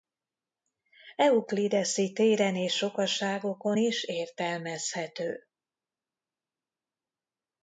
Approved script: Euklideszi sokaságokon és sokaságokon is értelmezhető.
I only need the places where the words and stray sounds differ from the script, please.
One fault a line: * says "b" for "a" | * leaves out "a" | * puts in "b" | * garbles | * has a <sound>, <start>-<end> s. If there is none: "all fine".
* says "téren" for "sokaságokon"